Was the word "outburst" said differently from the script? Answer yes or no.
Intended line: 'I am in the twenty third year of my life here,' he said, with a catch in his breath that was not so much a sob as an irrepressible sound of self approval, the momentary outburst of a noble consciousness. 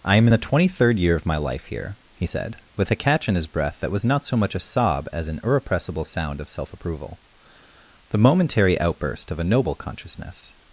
no